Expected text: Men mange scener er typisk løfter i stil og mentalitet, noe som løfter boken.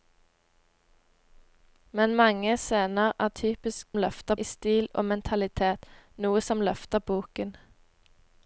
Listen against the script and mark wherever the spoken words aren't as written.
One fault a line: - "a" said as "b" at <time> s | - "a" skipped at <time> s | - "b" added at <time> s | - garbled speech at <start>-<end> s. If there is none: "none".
none